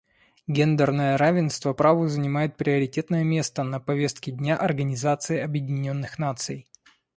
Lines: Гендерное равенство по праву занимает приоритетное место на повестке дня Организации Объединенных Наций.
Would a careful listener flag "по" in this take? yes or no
yes